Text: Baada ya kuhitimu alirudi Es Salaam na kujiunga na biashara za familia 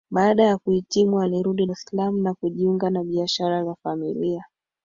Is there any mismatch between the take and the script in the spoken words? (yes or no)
no